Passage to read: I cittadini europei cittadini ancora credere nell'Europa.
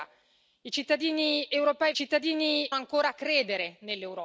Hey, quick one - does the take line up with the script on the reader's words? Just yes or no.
yes